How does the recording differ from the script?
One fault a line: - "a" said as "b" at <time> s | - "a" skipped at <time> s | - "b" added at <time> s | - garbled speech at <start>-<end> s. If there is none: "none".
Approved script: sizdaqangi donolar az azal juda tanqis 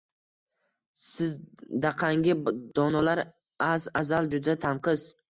none